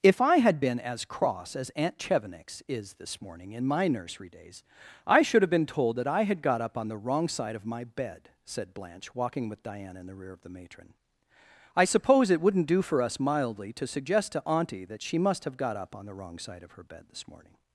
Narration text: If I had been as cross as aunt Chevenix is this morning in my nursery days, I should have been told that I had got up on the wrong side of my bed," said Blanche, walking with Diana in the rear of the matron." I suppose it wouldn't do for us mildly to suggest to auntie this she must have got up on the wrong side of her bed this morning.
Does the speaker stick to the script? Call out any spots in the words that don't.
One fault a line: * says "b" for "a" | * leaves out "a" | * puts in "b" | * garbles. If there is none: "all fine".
* says "that" for "this"